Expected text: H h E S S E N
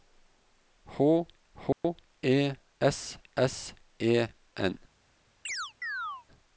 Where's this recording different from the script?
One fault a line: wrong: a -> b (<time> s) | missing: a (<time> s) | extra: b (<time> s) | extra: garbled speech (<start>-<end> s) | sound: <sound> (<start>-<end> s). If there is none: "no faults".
sound: dropout (1.7-1.8 s)
sound: chirp (5.5-6.3 s)